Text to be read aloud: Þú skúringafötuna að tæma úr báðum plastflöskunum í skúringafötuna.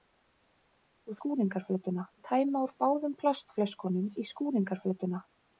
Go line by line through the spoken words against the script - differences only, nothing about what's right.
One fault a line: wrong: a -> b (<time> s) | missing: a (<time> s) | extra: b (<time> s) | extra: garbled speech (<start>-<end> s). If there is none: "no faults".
no faults